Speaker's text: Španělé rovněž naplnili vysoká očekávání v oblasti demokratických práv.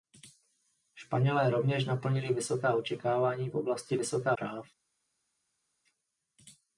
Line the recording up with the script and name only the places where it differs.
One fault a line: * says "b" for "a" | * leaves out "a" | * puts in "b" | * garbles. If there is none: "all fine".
* says "vysoká" for "demokratických"